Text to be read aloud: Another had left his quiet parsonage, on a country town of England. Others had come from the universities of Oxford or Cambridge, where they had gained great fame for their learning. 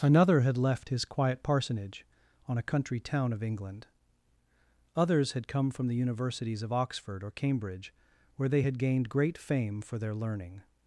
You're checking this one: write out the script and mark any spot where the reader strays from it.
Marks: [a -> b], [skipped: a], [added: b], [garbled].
Another had left his quiet parsonage, on a country town of England. Others had come from the universities of Oxford or Cambridge, where they had gained great fame for their learning.